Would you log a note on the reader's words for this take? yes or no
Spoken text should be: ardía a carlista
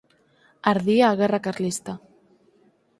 yes